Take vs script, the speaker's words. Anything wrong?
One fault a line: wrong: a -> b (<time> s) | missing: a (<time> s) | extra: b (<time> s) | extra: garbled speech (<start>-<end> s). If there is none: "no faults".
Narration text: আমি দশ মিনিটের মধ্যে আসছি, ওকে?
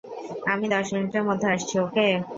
no faults